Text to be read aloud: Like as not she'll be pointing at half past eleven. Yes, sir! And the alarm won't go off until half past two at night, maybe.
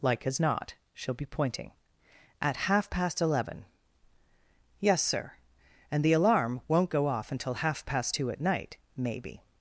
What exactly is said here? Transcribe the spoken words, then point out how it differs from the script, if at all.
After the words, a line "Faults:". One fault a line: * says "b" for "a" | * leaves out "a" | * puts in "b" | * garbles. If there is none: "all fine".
Like as not she'll be pointing at half past eleven. Yes, sir! And the alarm won't go off until half past two at night, maybe.
Faults:
all fine